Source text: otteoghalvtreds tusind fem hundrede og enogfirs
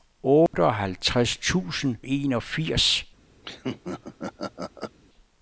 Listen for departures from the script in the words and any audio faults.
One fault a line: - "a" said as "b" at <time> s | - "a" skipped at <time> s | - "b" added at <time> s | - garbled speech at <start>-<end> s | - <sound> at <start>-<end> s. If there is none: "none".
- dropout at 0.5-0.5 s
- "fem hundrede og" skipped at 1.9 s
- laugh at 3.4-5.0 s